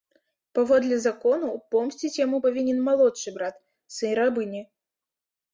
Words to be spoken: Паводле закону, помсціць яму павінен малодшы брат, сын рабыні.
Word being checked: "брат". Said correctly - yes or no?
yes